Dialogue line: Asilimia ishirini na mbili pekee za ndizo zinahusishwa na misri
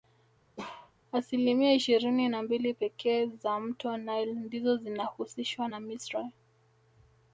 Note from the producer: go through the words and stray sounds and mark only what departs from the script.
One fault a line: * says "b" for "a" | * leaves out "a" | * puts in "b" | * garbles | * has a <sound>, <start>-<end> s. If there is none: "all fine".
* has a bark, 0.6-0.9 s
* puts in "mto nile"